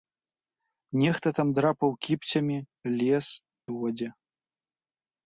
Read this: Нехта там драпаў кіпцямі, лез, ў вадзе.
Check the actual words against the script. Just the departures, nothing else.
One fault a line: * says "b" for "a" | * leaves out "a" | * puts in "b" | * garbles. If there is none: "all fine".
all fine